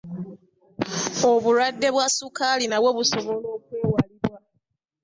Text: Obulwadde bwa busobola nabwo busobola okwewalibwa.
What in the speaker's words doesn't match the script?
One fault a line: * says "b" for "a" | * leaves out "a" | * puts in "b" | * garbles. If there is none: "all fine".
* says "ssukaali" for "busobola"